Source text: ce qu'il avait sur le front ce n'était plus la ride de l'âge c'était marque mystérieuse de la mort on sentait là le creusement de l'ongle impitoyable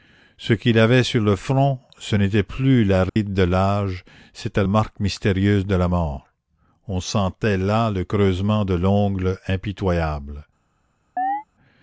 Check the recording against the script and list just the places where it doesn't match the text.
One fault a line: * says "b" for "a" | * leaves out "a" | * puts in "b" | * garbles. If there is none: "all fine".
all fine